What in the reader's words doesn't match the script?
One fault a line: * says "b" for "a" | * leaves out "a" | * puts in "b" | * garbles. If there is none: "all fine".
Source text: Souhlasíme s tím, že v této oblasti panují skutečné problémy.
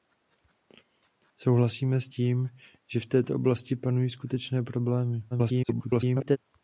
* garbles